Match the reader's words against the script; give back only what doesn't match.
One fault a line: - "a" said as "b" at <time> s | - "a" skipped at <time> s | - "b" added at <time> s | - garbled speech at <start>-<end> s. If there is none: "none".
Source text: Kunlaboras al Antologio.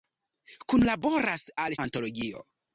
none